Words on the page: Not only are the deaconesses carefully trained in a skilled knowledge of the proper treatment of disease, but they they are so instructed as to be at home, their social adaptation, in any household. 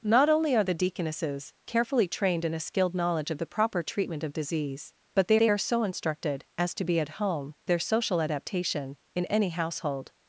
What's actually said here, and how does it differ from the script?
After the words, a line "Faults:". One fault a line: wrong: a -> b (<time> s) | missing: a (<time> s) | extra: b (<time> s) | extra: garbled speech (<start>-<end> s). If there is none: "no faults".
Not only are the deaconesses carefully trained in a skilled knowledge of the proper treatment of disease, but they they are so instructed as to be at home, their social adaptation, in any household.
Faults:
no faults